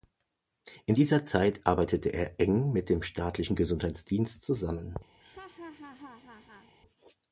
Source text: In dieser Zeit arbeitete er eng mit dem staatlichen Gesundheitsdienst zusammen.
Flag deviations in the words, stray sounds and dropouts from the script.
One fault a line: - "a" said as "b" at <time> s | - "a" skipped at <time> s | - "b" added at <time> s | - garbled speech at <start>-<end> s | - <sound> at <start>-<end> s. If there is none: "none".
- laugh at 5.2-6.7 s